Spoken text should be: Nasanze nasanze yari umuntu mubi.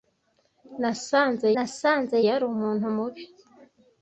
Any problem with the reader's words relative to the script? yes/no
no